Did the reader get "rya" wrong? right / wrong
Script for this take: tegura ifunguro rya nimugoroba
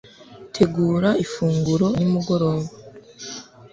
wrong